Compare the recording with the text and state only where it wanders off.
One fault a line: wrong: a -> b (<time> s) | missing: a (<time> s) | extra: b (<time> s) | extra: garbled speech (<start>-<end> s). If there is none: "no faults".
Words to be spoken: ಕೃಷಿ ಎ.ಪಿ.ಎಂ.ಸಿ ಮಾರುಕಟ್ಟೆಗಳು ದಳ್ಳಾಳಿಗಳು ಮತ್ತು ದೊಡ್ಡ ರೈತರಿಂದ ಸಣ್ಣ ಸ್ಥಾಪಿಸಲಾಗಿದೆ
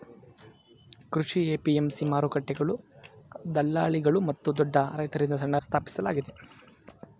no faults